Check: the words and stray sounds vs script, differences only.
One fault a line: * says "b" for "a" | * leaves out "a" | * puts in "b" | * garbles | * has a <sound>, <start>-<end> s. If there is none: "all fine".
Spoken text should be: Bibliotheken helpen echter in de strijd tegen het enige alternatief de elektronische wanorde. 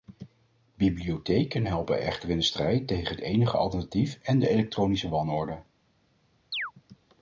* puts in "en"
* has a chirp, 6.5-6.7 s